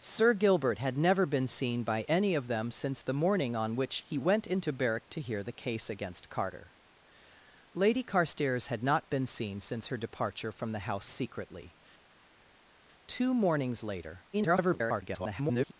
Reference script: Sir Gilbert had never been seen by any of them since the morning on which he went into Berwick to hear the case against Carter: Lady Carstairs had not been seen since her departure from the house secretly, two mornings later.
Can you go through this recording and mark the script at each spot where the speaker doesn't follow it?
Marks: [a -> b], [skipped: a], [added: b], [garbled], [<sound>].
Sir Gilbert had never been seen by any of them since the morning on which he went into Berwick to hear the case against Carter: Lady Carstairs had not been seen since her departure from the house secretly, two mornings later. [garbled]